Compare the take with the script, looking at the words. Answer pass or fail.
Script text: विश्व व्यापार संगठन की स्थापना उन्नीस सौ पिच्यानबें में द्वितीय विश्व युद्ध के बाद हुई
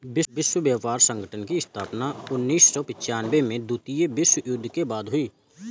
pass